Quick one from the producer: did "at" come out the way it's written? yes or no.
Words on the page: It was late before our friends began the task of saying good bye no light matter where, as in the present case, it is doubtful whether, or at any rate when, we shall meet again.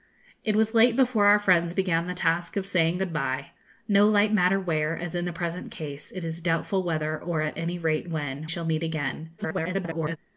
yes